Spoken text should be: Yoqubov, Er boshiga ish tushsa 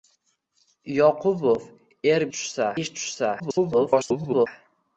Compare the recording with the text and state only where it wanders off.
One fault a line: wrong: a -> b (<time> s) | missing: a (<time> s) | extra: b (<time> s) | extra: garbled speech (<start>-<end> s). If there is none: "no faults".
wrong: boshiga -> tushsa (2.4 s)
extra: garbled speech (3.4-4.5 s)